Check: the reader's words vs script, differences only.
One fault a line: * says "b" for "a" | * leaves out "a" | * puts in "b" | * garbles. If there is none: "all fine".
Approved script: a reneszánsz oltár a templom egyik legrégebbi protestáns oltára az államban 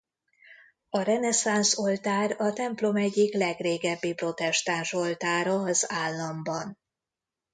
all fine